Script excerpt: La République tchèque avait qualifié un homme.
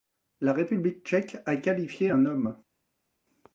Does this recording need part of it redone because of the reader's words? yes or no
yes